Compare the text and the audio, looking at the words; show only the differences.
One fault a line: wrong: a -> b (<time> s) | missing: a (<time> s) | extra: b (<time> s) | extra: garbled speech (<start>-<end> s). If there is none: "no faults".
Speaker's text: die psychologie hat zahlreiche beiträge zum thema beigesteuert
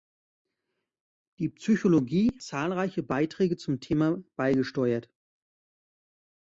missing: hat (2.4 s)